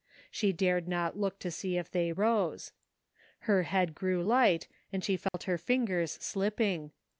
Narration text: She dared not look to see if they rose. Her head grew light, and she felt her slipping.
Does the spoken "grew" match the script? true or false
true